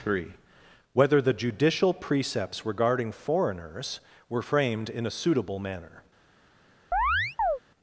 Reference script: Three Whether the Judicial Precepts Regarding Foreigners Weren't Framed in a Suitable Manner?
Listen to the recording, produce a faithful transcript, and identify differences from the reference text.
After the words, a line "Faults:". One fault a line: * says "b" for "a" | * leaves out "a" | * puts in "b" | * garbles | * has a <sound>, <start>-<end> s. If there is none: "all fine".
Three Whether the Judicial Precepts Regarding Foreigners Were Framed in a Suitable Manner?
Faults:
* says "Were" for "Weren't"
* has a chirp, 6.9-7.6 s